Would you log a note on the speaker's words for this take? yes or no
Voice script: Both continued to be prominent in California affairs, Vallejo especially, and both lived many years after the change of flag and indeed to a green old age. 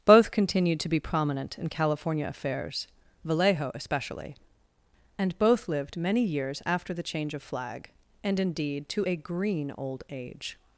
no